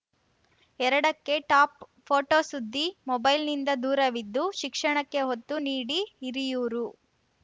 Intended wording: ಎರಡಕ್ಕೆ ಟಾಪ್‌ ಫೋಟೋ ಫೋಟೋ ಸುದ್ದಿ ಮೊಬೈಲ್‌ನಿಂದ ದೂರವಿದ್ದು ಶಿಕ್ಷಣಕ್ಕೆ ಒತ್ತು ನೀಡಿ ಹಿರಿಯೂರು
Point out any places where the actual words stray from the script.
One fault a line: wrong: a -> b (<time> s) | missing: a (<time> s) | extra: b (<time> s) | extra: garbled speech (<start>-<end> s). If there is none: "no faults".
missing: ಫೋಟೋ (2.4 s)